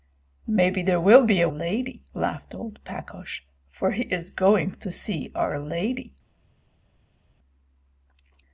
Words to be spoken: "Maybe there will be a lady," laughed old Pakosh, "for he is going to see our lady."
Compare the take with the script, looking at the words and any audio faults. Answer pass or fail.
pass